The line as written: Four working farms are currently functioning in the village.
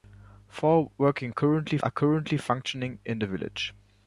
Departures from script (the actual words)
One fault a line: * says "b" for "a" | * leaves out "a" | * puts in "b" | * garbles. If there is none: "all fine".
* says "currently" for "farms"